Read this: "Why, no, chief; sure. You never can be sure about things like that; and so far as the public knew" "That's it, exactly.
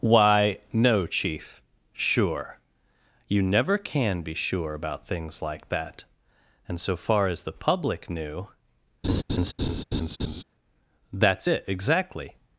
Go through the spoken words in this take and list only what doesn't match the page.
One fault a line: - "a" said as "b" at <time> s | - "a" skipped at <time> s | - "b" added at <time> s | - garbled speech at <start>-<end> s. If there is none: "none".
none